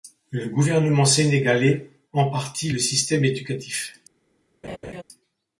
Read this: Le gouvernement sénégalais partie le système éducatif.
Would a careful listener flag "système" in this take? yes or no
no